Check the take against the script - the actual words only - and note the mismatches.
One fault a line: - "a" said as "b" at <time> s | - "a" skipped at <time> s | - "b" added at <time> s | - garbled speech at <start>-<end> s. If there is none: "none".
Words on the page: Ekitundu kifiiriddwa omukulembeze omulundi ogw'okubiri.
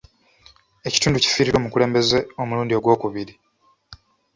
none